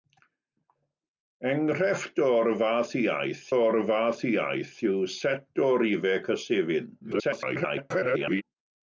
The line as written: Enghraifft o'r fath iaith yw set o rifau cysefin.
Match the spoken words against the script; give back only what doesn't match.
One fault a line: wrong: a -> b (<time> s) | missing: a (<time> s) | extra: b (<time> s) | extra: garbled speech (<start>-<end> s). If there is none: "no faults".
extra: o'r fath iaith (3.6 s)
extra: garbled speech (7.0-8.4 s)